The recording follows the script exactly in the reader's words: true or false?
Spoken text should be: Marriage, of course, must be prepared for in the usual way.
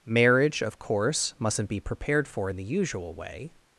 false